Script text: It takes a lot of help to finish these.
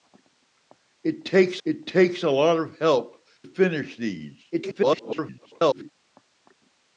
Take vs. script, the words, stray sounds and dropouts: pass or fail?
fail